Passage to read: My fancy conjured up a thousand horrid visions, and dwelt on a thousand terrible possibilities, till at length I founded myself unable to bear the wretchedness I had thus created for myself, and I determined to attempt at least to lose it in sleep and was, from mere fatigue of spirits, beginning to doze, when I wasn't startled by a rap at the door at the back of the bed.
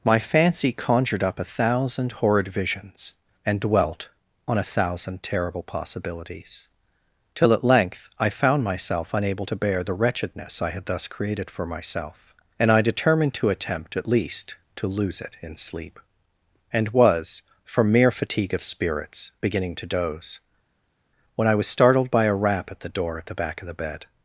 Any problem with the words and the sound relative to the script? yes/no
yes